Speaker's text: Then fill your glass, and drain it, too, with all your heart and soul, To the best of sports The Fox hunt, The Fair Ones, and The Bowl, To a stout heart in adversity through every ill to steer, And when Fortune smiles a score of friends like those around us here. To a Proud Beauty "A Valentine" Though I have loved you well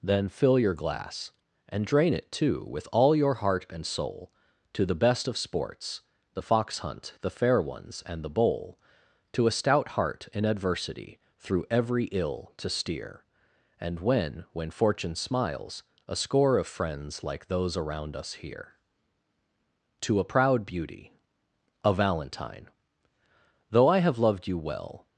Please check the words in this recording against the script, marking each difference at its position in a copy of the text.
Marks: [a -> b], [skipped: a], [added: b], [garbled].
Then fill your glass, and drain it, too, with all your heart and soul, To the best of sports The Fox hunt, The Fair Ones, and The Bowl, To a stout heart in adversity through every ill to steer, And when [added: when] Fortune smiles a score of friends like those around us here. To a Proud Beauty "A Valentine" Though I have loved you well